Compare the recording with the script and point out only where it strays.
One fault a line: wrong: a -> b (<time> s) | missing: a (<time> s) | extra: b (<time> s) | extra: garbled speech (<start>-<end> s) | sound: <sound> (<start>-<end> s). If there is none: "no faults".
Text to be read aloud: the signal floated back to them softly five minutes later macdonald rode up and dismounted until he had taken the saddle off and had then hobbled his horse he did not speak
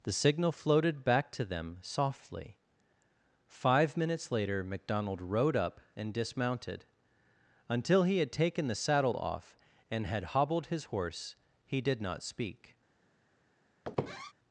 missing: then (10.3 s)
sound: squeak (13.8-14.3 s)